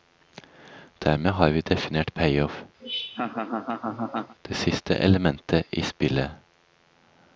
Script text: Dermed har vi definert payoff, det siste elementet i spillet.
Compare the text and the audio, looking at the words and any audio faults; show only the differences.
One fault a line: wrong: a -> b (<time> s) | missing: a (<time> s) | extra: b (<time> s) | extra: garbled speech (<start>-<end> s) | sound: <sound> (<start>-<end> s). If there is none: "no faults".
sound: laugh (2.8-4.4 s)